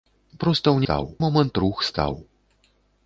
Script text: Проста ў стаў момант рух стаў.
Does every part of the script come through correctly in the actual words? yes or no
yes